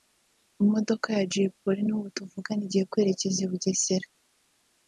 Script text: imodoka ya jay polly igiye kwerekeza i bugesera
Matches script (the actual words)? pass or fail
fail